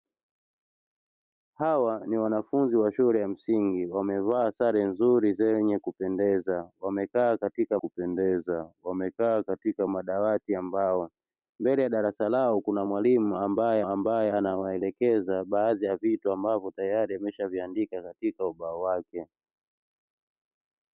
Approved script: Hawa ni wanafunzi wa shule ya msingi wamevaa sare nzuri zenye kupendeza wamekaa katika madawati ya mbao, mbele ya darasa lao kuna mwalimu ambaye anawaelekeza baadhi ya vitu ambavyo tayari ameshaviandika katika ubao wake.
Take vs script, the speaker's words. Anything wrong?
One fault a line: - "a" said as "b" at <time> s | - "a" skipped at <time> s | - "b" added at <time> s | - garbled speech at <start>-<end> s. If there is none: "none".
- "kupendeza wamekaa katika" added at 7.8 s
- "ambaye" added at 13.8 s